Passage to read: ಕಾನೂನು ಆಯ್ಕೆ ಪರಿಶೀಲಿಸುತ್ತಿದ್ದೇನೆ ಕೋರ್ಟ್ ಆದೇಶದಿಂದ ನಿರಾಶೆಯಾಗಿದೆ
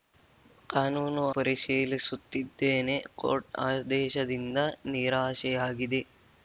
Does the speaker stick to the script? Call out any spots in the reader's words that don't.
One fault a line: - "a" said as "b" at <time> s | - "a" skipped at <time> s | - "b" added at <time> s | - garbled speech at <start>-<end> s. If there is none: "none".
- "ಆಯ್ಕೆ" skipped at 1.2 s